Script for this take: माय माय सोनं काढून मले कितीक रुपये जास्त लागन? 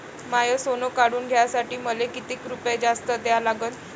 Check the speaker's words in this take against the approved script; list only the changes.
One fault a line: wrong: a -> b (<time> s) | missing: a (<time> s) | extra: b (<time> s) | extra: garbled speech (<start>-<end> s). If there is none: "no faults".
missing: माय (0.6 s)
extra: घ्यासाठी (1.3 s)
extra: द्या (3.1 s)